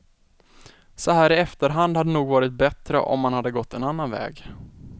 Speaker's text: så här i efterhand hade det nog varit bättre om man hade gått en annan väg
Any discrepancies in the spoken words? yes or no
no